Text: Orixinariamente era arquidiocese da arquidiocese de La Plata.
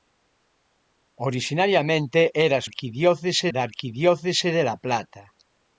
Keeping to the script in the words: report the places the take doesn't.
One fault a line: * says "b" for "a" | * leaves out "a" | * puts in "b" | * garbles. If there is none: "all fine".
all fine